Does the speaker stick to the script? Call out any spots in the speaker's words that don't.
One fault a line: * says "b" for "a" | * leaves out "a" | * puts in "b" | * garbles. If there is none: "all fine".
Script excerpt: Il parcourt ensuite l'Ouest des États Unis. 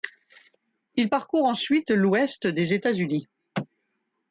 all fine